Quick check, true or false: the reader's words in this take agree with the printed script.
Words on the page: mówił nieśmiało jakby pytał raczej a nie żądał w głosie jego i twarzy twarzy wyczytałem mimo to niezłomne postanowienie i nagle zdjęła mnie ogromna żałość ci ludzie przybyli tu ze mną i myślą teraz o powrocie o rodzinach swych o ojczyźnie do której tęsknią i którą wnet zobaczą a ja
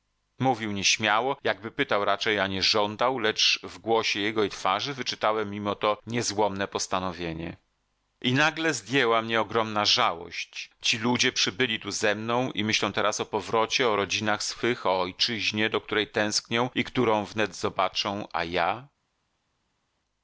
false